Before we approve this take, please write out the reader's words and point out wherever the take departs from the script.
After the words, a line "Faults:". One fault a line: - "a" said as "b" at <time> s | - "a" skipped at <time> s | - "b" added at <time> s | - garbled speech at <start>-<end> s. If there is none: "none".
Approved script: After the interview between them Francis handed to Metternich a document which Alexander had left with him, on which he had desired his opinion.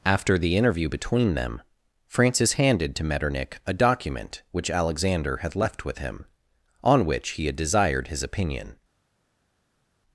After the interview between them Francis handed to Metternich a document which Alexander had left with him, on which he had desired his opinion.
Faults:
none